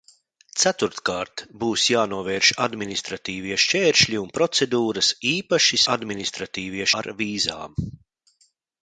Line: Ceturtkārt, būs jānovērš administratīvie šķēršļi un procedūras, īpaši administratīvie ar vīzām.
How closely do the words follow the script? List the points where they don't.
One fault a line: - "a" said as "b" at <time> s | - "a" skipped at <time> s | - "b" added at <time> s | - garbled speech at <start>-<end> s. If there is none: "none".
none